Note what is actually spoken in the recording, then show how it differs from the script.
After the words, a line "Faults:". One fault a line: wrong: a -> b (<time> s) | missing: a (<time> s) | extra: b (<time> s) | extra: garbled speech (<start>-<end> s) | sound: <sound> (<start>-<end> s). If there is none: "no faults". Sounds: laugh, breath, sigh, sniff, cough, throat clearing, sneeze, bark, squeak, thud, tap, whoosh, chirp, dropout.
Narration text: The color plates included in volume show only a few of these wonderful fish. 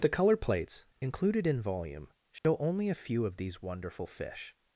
The color plates included in volume show only a few of these wonderful fish.
Faults:
sound: dropout (2.4-2.4 s)